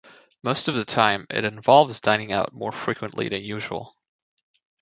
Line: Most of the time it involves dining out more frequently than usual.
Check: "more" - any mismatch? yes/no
no